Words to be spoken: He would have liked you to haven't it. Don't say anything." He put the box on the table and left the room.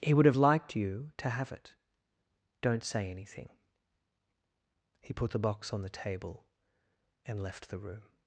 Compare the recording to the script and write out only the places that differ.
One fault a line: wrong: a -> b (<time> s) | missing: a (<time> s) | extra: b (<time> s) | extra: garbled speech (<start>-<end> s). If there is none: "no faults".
wrong: haven't -> have (1.3 s)